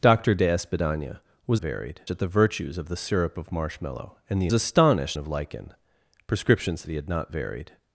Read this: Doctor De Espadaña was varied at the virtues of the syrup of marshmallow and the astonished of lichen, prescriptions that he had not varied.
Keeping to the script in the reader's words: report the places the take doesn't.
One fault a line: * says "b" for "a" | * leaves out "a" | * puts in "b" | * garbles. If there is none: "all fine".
all fine